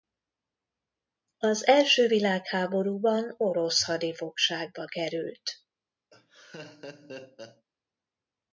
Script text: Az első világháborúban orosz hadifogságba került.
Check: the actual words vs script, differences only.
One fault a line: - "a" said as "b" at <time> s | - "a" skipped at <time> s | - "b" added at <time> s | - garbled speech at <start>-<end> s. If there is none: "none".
none